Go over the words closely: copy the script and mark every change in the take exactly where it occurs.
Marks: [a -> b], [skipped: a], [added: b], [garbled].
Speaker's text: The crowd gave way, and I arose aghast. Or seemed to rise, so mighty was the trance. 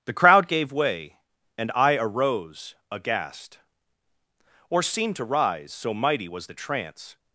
The crowd gave way, and I arose aghast. Or seemed to rise, so mighty was the trance.